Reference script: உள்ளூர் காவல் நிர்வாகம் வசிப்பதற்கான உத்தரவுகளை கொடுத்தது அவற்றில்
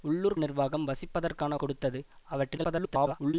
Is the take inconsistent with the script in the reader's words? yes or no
yes